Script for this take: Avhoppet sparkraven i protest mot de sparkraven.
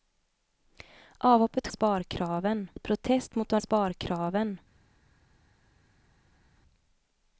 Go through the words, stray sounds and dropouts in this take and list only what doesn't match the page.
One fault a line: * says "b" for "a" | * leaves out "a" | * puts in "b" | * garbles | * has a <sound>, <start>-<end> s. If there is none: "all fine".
all fine